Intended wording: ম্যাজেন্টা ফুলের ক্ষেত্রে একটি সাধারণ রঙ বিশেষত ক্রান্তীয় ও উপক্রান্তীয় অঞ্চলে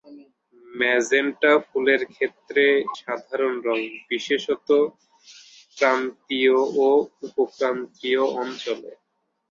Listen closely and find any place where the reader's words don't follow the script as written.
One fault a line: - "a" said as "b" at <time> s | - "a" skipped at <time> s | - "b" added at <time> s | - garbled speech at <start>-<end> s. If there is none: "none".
- "একটি" skipped at 2.6 s